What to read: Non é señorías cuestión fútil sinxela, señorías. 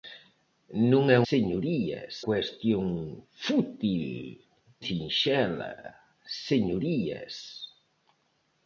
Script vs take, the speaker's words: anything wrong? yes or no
no